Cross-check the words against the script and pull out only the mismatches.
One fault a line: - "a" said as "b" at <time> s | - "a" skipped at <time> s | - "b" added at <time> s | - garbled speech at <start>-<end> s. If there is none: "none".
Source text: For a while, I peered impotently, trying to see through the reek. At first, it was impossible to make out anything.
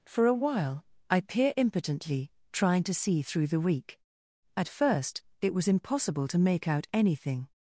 - "peered" said as "peer" at 1.2 s